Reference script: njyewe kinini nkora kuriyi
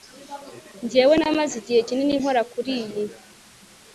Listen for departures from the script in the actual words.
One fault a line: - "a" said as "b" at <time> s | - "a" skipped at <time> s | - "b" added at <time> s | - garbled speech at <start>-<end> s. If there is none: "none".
- "namaze igihe" added at 1.2 s